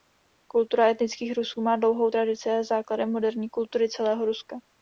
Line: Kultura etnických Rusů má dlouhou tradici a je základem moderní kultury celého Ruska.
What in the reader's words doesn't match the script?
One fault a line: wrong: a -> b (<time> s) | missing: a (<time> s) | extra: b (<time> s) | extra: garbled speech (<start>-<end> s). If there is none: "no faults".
no faults